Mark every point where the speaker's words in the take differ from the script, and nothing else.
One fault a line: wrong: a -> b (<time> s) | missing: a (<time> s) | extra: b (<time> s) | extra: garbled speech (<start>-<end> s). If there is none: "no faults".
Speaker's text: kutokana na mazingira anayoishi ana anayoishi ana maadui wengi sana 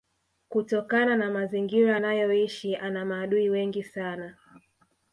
missing: anayoishi ana (3.1 s)